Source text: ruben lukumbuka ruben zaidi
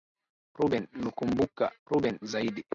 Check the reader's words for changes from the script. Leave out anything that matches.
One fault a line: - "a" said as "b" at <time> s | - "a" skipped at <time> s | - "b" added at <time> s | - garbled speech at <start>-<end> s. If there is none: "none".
none